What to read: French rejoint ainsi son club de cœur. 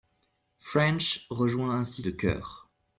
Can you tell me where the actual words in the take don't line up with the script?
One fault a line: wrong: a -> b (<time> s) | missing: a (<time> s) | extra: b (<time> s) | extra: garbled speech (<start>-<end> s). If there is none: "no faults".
missing: son club (2.0 s)